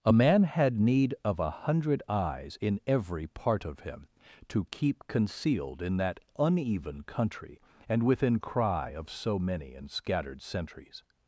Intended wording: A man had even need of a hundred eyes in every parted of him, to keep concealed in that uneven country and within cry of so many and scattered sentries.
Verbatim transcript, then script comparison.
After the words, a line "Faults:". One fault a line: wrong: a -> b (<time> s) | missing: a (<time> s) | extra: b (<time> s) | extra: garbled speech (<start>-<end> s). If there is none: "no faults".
A man had need of a hundred eyes in every part of him, to keep concealed in that uneven country and within cry of so many and scattered sentries.
Faults:
missing: even (0.8 s)
wrong: parted -> part (3.3 s)